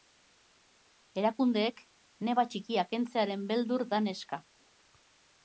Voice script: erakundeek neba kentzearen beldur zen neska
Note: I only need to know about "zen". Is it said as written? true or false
false